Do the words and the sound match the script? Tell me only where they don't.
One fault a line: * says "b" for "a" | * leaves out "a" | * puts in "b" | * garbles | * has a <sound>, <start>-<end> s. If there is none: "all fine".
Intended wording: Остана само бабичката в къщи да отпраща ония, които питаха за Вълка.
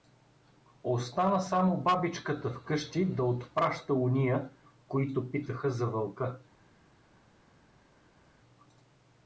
all fine